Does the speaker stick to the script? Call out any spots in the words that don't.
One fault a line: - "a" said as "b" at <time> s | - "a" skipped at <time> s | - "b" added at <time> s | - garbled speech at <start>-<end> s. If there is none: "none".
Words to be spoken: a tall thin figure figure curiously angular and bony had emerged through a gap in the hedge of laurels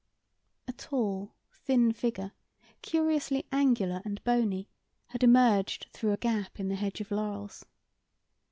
- "figure" skipped at 2.3 s